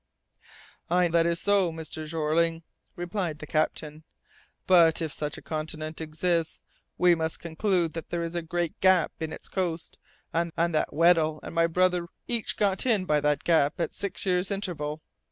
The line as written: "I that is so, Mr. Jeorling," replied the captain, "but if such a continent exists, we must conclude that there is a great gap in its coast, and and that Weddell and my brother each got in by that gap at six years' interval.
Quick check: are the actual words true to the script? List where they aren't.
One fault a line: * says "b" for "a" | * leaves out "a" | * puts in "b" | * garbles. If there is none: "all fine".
all fine